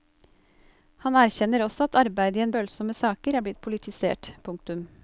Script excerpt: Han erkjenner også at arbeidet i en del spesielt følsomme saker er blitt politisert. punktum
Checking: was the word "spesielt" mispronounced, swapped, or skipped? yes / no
yes